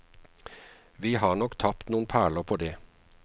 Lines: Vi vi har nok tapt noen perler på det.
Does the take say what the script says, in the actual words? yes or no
no